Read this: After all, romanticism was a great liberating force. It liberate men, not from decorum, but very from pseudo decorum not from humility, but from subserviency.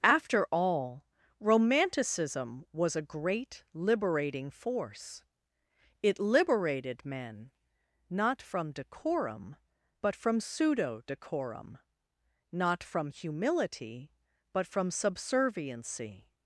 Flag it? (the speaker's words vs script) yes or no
yes